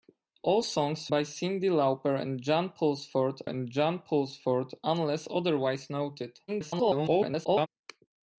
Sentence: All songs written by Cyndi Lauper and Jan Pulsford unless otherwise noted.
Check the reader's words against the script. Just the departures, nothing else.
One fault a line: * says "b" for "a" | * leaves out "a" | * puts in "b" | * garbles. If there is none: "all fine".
* leaves out "written"
* puts in "and Jan Pulsford"
* garbles